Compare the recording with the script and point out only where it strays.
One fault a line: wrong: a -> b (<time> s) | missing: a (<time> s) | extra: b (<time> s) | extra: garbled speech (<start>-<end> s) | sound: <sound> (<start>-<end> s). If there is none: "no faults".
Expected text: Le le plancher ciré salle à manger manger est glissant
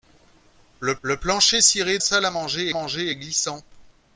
no faults